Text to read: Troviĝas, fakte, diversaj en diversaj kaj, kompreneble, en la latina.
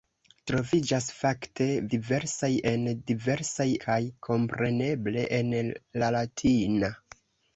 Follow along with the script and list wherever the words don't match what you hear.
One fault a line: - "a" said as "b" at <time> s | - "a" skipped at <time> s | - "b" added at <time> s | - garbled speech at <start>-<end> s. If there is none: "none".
none